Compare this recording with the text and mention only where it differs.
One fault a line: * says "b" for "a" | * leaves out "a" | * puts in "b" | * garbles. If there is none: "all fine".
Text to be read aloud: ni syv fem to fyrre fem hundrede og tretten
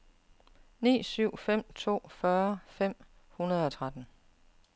all fine